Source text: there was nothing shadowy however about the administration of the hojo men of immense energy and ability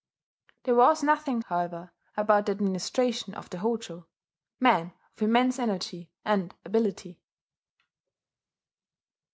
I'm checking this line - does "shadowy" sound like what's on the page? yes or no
no